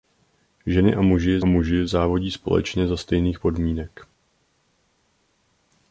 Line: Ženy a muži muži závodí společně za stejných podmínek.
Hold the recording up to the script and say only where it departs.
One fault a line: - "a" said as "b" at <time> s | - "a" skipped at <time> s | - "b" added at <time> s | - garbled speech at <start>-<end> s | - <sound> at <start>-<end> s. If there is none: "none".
none